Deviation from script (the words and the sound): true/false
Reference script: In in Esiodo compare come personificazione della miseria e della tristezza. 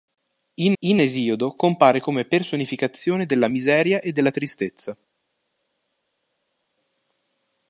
false